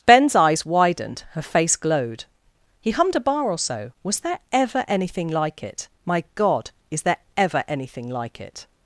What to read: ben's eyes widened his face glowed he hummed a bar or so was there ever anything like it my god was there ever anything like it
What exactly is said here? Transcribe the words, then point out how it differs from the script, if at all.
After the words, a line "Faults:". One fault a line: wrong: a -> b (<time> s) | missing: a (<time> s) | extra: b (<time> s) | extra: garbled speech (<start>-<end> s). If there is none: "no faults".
ben's eyes widened her face glowed he hummed a bar or so was there ever anything like it my god is there ever anything like it
Faults:
wrong: his -> her (1.3 s)
wrong: was -> is (6.9 s)